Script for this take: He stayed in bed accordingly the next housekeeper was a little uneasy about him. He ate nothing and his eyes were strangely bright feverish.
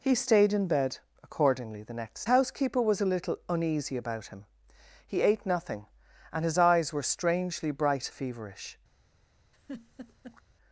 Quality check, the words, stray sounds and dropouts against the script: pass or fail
fail